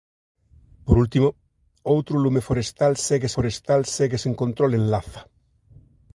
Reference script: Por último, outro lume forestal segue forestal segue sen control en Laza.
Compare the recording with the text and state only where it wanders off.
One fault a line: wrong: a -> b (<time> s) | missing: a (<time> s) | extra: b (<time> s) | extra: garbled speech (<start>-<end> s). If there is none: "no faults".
no faults